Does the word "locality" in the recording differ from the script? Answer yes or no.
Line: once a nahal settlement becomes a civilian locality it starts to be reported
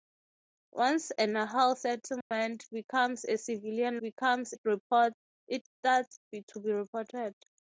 yes